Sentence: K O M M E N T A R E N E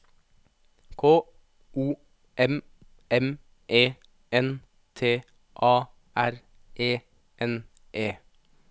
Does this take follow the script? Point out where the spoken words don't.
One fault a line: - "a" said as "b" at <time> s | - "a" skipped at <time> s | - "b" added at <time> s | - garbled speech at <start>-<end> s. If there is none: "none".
none